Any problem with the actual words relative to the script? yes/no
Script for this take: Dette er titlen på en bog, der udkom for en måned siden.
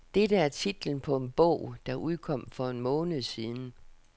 no